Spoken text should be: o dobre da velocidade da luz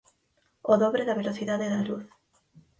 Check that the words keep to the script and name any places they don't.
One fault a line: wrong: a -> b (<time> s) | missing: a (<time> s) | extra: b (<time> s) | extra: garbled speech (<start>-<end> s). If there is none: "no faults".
no faults